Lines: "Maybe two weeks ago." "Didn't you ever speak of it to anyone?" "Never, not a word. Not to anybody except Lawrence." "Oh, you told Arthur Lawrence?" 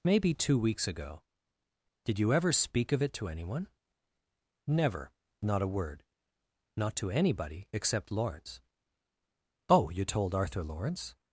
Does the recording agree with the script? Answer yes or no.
no